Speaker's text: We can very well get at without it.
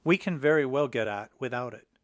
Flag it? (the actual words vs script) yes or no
no